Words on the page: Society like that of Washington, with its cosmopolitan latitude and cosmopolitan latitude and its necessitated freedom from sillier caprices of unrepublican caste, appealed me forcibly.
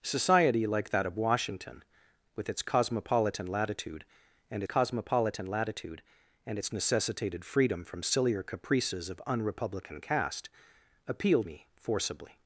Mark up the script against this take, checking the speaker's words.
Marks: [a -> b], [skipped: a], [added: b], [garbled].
Society like that of Washington, with its cosmopolitan latitude and cosmopolitan latitude and its necessitated freedom from sillier caprices of unrepublican caste, appealed me forcibly.